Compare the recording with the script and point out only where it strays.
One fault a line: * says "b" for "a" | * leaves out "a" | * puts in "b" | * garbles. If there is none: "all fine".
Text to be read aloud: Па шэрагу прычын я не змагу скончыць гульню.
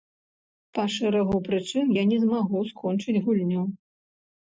all fine